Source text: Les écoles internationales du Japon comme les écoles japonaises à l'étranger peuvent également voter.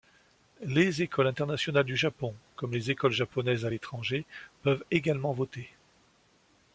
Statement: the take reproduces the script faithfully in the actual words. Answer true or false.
true